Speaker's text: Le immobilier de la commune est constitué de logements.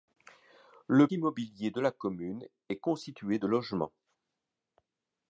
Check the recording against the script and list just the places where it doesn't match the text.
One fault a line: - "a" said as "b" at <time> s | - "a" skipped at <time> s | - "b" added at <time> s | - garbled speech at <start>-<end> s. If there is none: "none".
none